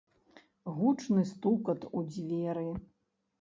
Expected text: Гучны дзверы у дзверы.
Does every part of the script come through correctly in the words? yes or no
no